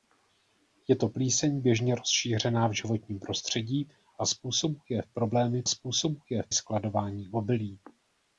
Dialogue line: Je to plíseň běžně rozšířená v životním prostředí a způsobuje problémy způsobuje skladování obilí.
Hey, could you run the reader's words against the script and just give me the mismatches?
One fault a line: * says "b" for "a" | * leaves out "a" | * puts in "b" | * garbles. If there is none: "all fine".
all fine